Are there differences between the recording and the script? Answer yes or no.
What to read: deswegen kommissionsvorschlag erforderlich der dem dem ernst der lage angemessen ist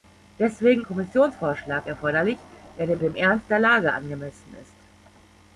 no